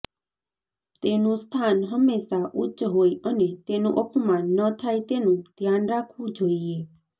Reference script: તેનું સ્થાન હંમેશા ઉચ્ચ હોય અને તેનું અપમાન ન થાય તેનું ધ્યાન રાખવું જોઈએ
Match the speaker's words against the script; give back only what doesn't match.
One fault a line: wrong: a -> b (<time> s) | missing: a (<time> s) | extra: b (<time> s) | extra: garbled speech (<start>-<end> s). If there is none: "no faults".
no faults